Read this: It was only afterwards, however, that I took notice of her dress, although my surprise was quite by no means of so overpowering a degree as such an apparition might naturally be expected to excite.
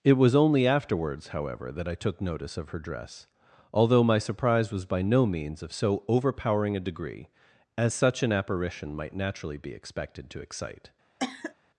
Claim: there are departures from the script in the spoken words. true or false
true